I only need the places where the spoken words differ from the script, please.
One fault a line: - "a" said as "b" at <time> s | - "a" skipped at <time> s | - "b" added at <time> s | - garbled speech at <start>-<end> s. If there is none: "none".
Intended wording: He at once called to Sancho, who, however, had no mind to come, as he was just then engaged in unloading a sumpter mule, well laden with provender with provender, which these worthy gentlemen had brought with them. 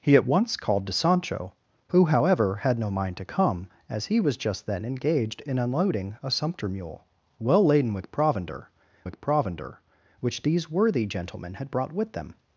none